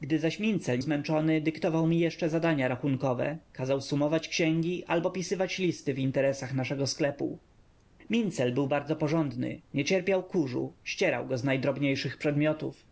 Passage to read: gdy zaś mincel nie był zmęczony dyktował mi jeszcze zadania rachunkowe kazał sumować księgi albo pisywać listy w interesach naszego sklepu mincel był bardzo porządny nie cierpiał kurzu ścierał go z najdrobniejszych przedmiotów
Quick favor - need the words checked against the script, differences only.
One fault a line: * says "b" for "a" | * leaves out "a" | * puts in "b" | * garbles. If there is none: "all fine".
* leaves out "nie był"